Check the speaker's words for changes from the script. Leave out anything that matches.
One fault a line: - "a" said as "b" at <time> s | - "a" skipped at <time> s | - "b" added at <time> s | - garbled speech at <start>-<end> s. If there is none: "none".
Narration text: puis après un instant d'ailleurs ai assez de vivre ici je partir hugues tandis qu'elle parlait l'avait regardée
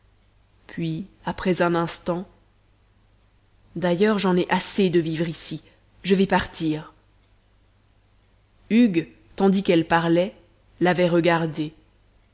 - "j'en" added at 4.2 s
- "vais" added at 6.2 s